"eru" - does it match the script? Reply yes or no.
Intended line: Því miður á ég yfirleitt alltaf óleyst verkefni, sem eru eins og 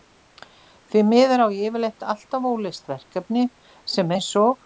no